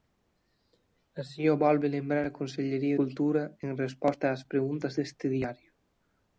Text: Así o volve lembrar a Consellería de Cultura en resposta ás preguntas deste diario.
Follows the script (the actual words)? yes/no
no